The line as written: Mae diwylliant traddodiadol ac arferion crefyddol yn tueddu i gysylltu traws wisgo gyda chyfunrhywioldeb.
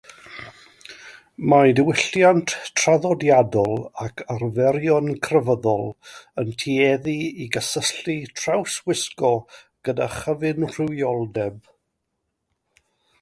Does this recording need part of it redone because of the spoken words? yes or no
no